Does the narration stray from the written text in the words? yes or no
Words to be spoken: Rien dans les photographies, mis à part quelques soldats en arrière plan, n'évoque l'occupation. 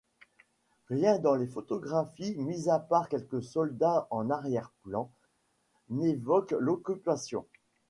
no